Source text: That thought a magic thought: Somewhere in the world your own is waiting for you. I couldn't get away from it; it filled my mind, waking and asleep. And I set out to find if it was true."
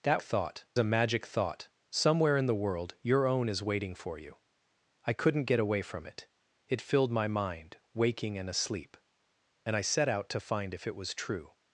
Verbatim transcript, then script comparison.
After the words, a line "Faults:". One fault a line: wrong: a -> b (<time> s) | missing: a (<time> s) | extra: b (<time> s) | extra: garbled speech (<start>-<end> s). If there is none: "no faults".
That thought a magic thought: Somewhere in the world your own is waiting for you. I couldn't get away from it; it filled my mind, waking and asleep. And I set out to find if it was true."
Faults:
no faults